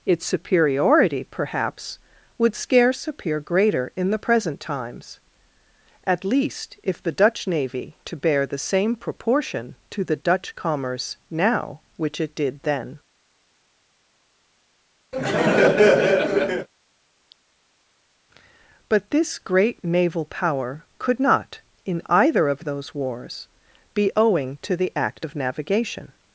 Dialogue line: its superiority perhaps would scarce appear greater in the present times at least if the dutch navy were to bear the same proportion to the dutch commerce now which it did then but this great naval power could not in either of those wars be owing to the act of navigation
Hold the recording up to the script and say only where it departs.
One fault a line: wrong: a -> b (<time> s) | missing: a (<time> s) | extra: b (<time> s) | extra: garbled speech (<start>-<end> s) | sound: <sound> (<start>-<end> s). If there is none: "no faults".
missing: were (8.0 s)
sound: laugh (15.1-16.7 s)